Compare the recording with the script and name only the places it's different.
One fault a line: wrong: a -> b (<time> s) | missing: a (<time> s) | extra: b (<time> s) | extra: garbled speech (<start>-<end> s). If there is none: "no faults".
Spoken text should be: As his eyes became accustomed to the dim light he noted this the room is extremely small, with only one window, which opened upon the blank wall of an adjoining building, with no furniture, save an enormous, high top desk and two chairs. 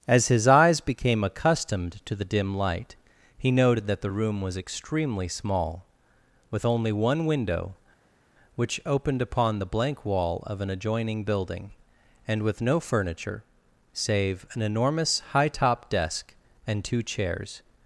wrong: this -> that (3.9 s)
wrong: is -> was (4.4 s)
extra: and (12.3 s)